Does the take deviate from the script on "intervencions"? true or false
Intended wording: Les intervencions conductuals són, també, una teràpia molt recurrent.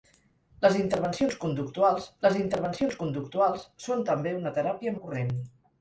false